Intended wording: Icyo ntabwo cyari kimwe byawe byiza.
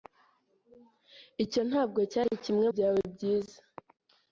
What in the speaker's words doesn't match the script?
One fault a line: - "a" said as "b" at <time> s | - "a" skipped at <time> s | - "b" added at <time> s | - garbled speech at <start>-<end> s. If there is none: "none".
none